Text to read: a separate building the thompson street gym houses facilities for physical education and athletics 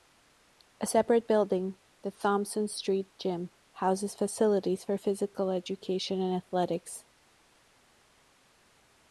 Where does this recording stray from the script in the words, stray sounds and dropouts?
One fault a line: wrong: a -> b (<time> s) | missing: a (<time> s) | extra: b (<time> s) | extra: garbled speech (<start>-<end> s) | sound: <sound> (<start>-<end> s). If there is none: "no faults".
no faults